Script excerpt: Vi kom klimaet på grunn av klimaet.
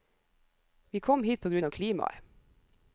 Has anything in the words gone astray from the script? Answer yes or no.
yes